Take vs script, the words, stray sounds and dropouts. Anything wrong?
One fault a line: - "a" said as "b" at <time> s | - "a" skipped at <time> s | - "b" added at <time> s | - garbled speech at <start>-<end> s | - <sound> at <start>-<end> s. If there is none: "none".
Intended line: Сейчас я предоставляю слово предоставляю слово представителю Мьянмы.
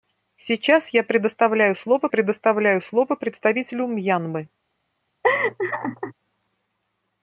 - laugh at 5.2-6.1 s